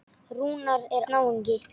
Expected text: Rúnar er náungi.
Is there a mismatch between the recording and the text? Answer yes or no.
no